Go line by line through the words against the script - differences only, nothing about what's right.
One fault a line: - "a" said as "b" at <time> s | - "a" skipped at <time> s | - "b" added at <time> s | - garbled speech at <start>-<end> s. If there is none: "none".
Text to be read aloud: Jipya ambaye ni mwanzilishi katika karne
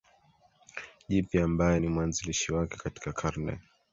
- "wake" added at 2.5 s